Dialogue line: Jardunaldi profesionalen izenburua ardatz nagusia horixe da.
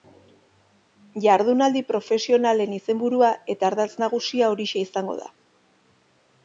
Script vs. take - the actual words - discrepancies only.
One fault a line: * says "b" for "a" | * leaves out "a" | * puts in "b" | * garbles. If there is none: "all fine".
* puts in "eta"
* puts in "izango"